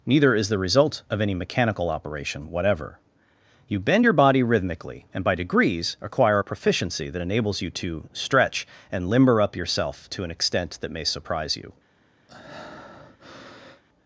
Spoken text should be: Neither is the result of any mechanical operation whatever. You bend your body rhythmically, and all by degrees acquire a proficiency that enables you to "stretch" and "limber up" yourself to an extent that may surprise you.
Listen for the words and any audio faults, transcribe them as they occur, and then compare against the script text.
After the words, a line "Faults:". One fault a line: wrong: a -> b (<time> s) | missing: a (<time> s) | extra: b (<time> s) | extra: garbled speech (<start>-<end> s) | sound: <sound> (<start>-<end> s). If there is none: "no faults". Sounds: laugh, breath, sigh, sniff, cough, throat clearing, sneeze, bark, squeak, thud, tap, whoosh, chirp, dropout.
Neither is the result of any mechanical operation whatever. You bend your body rhythmically, and by degrees acquire a proficiency that enables you to "stretch" and "limber up" yourself to an extent that may surprise you.
Faults:
missing: all (5.2 s)
sound: breath (12.3-13.8 s)